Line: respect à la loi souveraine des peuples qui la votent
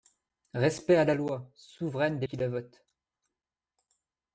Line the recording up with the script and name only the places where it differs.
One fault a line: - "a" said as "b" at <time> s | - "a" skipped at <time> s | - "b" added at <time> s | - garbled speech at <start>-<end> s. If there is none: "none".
- "peuples" skipped at 2.3 s